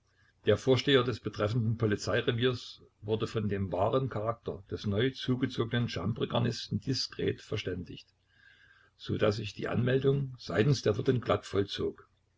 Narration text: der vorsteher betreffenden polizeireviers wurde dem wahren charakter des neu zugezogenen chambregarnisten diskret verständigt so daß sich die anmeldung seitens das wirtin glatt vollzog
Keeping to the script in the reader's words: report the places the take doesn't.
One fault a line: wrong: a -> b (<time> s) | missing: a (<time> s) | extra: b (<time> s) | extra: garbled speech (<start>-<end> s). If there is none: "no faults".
extra: des (1.0 s)
extra: von (3.3 s)
wrong: das -> der (10.8 s)